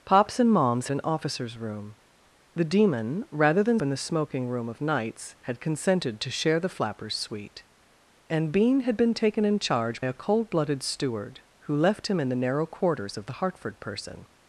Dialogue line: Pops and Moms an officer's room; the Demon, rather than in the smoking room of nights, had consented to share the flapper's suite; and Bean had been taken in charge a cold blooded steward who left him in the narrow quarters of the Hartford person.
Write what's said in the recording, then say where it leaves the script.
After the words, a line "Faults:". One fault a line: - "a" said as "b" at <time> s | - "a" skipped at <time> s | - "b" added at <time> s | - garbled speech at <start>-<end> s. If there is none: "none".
Pops and Moms an officer's room; the Demon, rather than in the smoking room of nights, had consented to share the flapper's suite; and Bean had been taken in charge a cold blooded steward who left him in the narrow quarters of the Hartford person.
Faults:
none